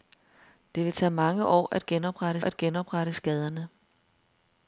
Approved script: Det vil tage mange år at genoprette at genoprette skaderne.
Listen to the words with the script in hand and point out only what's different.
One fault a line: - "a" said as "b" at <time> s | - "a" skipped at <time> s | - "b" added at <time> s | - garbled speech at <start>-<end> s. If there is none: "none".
none